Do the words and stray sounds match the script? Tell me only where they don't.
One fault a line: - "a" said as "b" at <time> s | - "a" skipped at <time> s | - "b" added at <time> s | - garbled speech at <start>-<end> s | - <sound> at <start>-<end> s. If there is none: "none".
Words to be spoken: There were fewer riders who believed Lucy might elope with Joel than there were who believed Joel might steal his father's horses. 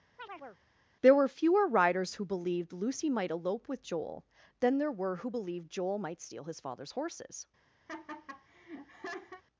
- chirp at 0.2-0.6 s
- laugh at 7.9-9.4 s